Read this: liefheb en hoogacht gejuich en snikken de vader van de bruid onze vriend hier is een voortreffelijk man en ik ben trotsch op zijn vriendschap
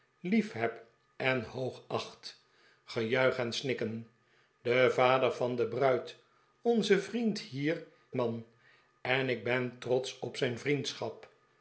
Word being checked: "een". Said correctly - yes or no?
no